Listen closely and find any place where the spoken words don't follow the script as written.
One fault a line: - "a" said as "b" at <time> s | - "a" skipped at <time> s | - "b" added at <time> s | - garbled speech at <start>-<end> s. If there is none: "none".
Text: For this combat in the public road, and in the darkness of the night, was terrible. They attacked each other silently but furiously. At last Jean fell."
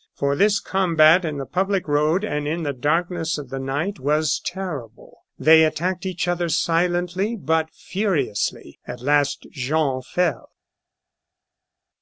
none